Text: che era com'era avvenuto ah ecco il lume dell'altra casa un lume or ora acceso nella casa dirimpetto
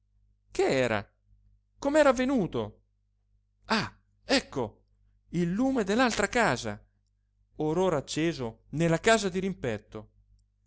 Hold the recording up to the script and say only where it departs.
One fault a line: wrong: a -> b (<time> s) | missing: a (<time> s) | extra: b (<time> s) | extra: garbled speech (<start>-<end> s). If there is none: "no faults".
missing: un lume (6.8 s)